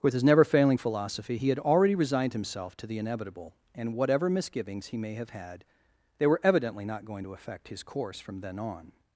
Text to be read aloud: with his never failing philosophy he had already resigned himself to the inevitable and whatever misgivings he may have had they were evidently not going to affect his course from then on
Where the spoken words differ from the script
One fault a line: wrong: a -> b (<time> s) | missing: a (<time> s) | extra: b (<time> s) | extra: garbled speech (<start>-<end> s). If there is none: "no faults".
no faults